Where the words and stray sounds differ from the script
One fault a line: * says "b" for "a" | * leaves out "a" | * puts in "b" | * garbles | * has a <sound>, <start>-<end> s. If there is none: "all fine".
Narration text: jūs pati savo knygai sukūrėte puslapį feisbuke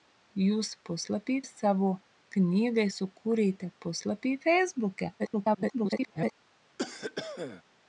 * says "puslapį" for "pati"
* garbles
* has a cough, 6.8-7.6 s